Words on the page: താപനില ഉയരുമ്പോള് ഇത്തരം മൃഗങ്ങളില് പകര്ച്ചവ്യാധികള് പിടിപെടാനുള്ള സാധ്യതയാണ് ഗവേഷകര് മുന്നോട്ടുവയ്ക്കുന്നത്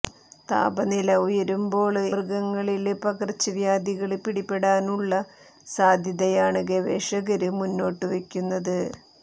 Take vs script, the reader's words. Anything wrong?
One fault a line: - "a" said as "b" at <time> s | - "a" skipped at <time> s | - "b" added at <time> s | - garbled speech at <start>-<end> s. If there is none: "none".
- "ഇത്തരം" skipped at 2.0 s